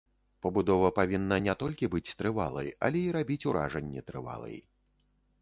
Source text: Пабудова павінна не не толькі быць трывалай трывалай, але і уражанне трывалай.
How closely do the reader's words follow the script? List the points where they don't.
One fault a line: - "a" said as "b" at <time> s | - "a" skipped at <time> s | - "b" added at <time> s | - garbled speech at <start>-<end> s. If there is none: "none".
- "не" skipped at 1.6 s
- "трывалай" skipped at 2.7 s
- "рабіць" added at 3.2 s